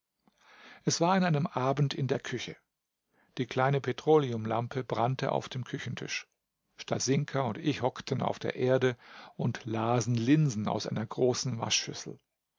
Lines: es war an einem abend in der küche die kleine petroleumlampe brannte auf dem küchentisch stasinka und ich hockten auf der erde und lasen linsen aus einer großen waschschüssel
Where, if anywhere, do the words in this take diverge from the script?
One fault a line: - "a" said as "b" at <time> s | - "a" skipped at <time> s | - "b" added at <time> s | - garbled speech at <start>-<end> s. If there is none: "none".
none